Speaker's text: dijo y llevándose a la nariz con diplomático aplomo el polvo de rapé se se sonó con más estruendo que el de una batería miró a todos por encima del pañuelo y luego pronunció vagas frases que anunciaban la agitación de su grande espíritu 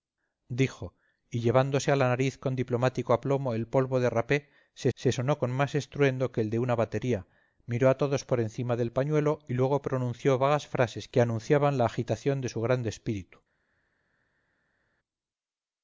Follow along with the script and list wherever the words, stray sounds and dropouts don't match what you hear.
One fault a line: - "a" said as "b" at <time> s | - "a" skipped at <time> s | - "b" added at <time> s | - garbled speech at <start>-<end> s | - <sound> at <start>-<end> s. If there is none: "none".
none